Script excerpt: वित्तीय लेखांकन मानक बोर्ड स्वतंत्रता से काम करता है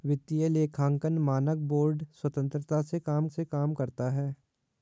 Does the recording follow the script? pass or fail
fail